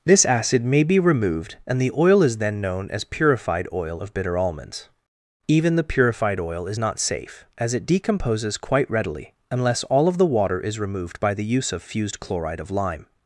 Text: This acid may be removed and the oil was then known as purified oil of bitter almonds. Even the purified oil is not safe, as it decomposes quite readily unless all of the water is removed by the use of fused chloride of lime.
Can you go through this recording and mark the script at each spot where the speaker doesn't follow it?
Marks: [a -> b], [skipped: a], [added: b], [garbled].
This acid may be removed and the oil [was -> is] then known as purified oil of bitter almonds. Even the purified oil is not safe, as it decomposes quite readily unless all of the water is removed by the use of fused chloride of lime.